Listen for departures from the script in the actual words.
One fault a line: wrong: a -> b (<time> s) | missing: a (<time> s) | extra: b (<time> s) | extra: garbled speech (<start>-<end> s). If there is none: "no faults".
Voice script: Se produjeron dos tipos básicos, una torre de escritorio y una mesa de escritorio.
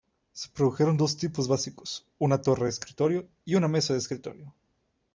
no faults